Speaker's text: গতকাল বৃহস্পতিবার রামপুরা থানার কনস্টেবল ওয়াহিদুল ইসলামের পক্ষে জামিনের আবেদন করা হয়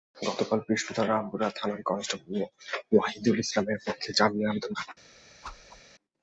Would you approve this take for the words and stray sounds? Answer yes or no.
no